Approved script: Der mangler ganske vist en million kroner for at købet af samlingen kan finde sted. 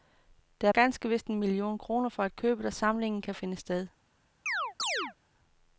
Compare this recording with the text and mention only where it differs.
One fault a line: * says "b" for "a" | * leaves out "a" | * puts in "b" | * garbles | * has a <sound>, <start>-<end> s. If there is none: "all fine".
* leaves out "mangler"
* has a chirp, 4.5-5.1 s